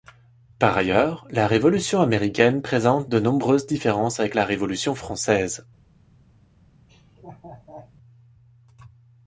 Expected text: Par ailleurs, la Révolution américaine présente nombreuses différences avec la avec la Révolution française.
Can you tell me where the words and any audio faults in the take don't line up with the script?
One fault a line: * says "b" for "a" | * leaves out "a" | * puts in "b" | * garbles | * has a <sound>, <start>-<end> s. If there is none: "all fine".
* puts in "de"
* leaves out "avec la"
* has a laugh, 6.9-7.9 s